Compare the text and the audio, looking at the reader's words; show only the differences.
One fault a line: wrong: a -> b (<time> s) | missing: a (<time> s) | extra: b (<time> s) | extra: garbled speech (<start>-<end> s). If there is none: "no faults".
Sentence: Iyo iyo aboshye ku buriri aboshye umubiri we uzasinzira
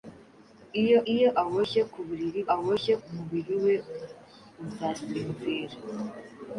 no faults